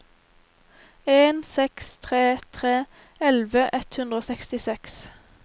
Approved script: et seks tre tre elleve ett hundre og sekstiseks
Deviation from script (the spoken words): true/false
true